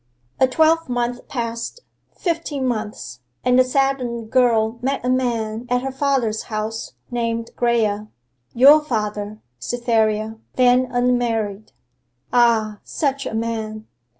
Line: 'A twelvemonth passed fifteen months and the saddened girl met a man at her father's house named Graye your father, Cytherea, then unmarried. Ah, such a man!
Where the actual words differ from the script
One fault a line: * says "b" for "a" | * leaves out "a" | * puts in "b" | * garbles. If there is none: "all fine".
all fine